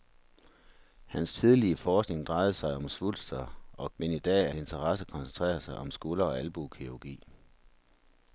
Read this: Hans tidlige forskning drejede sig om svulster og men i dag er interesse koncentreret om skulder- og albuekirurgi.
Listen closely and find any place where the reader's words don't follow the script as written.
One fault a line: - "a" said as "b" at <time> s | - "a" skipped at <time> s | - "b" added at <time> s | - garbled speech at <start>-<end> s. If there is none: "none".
none